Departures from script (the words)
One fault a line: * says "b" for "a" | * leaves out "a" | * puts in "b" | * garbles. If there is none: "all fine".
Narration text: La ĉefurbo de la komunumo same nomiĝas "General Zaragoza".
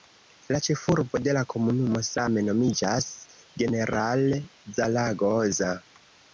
all fine